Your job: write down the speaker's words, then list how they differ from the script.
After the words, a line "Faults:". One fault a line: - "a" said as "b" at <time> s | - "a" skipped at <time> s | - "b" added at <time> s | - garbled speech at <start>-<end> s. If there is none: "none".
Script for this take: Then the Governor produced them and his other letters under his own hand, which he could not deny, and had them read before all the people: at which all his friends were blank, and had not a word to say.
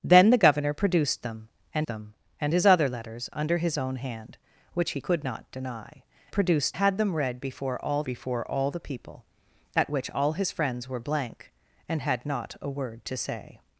Then the Governor produced them and them and his other letters under his own hand, which he could not deny, produced had them read before all before all the people: at which all his friends were blank, and had not a word to say.
Faults:
- "them and" added at 1.9 s
- "and" said as "produced" at 6.3 s
- "before all" added at 8.0 s